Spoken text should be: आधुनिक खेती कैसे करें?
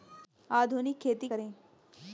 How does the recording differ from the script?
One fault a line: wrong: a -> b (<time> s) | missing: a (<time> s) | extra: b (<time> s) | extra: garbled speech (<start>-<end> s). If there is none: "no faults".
missing: कैसे (1.3 s)